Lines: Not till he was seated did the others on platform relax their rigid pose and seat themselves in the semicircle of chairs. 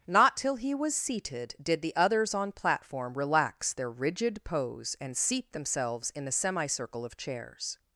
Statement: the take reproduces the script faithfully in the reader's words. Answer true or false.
true